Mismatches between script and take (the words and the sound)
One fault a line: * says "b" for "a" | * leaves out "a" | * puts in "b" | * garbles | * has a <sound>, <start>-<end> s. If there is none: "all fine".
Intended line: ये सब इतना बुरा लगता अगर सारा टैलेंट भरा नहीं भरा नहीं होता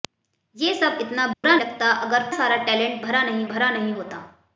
* has a dropout, 1.3-1.4 s